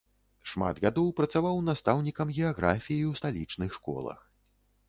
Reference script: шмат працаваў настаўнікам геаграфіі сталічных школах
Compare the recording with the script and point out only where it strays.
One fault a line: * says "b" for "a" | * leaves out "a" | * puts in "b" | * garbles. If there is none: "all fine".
* puts in "гадоў"
* puts in "ў"